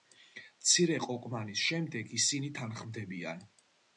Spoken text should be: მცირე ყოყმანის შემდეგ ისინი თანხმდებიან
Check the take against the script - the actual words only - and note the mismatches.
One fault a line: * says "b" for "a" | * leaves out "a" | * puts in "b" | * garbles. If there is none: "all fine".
all fine